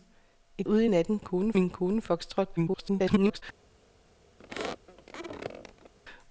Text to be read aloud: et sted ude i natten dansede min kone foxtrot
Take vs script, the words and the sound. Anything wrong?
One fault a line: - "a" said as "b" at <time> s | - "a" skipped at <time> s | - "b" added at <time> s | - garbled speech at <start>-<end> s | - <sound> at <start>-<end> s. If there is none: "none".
- "sted" skipped at 0.7 s
- "dansede" said as "kone" at 1.2 s
- garbled speech at 2.6-3.4 s
- squeak at 4.4-5.9 s